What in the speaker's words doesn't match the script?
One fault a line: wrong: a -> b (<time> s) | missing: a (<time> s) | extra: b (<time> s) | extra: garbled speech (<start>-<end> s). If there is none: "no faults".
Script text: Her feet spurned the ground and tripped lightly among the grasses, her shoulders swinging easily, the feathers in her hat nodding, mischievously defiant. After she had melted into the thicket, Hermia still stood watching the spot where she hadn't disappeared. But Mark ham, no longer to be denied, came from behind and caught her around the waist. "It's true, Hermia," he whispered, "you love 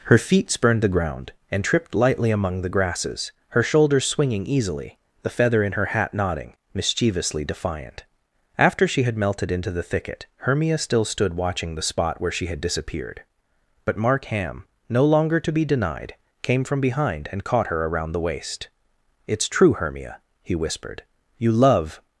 wrong: feathers -> feather (5.3 s)
wrong: hadn't -> had (12.5 s)